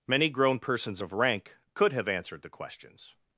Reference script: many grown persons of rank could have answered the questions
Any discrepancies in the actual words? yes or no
no